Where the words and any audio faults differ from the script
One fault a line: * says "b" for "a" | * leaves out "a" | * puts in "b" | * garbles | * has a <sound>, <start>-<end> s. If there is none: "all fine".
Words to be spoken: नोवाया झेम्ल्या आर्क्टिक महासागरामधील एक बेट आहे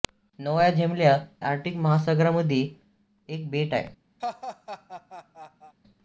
* has a laugh, 4.2-5.7 s